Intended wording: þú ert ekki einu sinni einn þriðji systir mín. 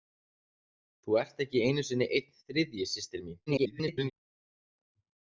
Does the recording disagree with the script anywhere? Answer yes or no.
yes